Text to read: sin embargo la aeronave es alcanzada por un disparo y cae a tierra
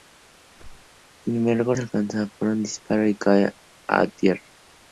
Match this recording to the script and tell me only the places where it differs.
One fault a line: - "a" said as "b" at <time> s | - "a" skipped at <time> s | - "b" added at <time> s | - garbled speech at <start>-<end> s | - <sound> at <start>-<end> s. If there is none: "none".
- whoosh at 0.5-1.0 s
- "la aeronave es" skipped at 1.7 s